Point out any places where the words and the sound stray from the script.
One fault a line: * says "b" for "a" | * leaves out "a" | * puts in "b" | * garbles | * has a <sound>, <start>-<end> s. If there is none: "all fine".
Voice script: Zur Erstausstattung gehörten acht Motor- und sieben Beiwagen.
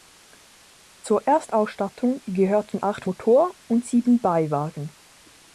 all fine